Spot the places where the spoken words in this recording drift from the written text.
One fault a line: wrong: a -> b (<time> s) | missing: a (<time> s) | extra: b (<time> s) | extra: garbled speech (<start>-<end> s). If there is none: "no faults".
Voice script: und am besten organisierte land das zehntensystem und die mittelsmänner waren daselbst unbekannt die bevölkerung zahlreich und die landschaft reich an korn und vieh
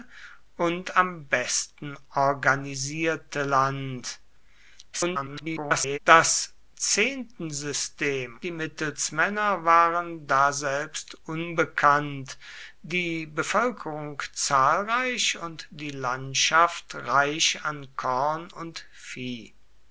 extra: garbled speech (4.9-6.0 s)
missing: und (8.4 s)